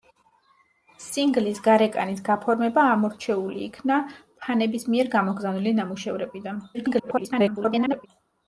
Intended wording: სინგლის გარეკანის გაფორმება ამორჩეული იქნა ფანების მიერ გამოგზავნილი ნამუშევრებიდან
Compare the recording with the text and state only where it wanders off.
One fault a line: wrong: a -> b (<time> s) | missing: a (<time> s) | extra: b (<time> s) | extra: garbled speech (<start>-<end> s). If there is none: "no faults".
extra: garbled speech (6.7-8.1 s)